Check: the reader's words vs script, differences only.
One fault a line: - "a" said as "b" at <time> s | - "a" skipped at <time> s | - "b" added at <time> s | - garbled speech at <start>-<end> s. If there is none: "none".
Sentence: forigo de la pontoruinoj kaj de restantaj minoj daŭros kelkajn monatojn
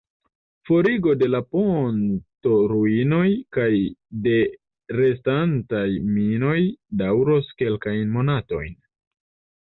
none